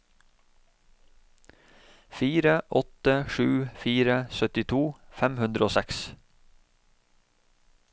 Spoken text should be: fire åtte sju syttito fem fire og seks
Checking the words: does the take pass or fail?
fail